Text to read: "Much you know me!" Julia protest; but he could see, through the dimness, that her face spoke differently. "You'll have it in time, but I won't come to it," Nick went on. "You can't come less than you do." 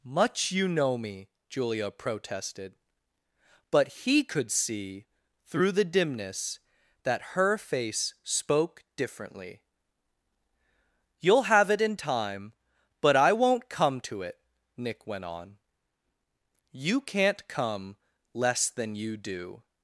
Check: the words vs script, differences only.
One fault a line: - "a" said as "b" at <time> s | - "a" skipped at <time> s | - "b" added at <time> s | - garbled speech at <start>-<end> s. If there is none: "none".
- "protest" said as "protested" at 1.9 s